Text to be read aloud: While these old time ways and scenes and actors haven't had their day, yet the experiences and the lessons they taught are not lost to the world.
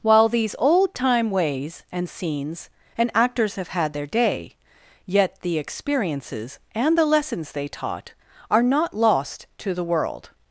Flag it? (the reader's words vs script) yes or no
yes